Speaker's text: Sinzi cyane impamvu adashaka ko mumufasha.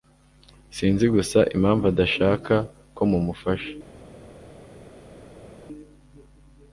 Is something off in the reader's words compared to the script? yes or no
yes